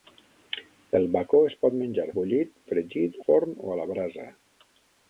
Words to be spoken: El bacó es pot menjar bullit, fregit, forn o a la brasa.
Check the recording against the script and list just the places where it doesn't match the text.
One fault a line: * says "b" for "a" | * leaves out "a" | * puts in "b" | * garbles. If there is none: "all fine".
all fine